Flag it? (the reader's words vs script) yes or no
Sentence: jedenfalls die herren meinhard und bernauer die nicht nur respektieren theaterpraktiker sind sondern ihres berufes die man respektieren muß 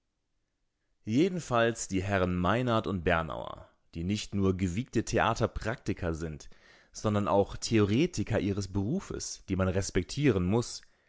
yes